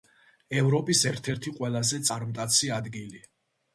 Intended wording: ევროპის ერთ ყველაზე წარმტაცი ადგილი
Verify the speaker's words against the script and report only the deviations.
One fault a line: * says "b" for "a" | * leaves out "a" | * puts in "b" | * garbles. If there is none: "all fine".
* puts in "ერთი"